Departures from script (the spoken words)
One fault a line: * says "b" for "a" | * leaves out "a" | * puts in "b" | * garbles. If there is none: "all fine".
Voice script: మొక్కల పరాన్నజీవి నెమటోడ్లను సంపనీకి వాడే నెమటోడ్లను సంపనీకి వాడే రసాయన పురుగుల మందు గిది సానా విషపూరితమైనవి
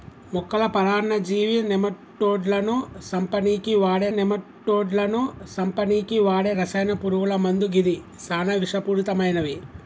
all fine